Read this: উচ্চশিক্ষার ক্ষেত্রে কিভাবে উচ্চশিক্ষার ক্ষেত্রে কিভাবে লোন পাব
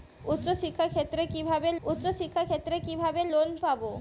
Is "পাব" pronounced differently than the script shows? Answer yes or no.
no